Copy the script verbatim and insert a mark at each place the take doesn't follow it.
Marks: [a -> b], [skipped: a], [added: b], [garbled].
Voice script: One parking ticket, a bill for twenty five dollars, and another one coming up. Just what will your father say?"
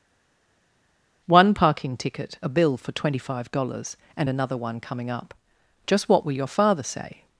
One parking ticket, a bill for twenty five dollars, and another one coming up. Just what will your father say?"